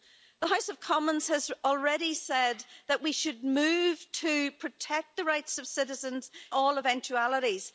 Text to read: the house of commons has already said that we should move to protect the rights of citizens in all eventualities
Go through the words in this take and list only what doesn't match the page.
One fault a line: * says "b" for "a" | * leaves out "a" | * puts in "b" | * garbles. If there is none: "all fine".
* leaves out "in"